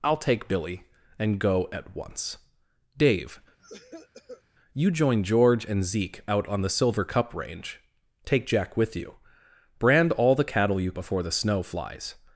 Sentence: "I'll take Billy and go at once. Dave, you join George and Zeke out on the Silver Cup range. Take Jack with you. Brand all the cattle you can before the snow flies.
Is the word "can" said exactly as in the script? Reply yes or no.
no